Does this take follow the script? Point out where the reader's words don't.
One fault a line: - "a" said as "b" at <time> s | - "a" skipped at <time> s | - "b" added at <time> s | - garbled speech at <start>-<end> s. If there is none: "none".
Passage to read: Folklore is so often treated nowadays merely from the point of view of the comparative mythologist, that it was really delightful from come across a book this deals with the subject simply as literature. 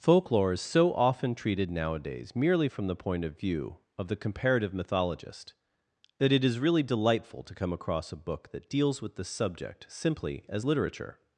- "was" said as "is" at 6.4 s
- "from" said as "to" at 7.4 s
- "this" said as "that" at 8.5 s